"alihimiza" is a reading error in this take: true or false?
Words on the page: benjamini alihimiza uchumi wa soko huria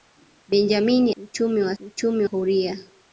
true